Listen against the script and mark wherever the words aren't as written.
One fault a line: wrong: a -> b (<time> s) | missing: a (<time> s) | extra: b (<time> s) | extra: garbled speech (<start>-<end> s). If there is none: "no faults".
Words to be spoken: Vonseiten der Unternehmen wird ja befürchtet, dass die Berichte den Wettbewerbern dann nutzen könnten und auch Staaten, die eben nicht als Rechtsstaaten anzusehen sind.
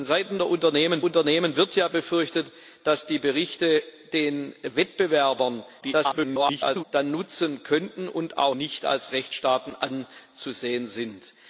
extra: Unternehmen (1.0 s)
extra: garbled speech (5.8-6.8 s)
missing: Staaten die eben (8.6 s)